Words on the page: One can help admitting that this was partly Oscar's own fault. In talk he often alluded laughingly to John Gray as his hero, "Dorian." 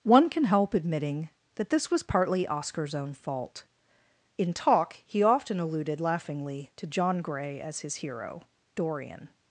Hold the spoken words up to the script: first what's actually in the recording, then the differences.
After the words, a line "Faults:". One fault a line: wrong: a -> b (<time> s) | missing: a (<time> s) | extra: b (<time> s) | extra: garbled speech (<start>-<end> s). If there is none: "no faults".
One can help admitting that this was partly Oscar's own fault. In talk he often alluded laughingly to John Gray as his hero, "Dorian."
Faults:
no faults